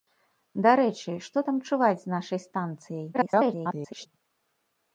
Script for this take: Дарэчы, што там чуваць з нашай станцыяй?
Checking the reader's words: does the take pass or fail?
fail